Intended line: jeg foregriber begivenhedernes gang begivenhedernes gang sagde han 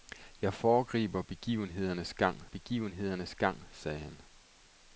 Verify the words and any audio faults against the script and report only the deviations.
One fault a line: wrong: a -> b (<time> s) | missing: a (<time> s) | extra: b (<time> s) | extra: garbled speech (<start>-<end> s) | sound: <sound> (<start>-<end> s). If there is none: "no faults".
no faults